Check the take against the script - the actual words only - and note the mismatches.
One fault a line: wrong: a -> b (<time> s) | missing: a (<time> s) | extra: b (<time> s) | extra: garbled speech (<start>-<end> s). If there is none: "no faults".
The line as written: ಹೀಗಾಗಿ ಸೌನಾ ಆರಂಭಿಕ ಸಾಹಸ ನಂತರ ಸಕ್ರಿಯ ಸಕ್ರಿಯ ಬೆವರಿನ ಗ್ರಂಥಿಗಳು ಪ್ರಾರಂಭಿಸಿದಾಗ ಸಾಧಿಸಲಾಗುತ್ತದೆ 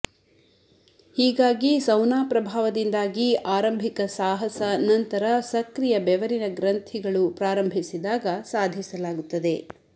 extra: ಪ್ರಭಾವದಿಂದಾಗಿ (2.2 s)
missing: ಸಕ್ರಿಯ (6.0 s)